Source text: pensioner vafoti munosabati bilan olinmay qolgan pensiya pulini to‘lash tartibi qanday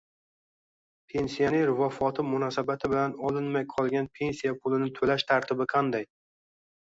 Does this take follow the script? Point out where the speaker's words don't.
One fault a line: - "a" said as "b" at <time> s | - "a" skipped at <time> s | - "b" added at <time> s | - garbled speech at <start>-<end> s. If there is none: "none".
none